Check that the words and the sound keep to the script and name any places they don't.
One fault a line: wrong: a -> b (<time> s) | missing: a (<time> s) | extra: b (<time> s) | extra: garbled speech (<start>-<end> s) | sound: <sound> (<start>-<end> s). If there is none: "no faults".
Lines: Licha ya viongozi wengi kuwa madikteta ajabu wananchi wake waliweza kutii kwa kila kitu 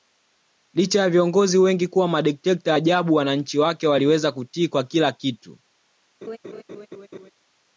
sound: laugh (6.2-7.3 s)